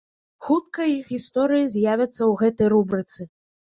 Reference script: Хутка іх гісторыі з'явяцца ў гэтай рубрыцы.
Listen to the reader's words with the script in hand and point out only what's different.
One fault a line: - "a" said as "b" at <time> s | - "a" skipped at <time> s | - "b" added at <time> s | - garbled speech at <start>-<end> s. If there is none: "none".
none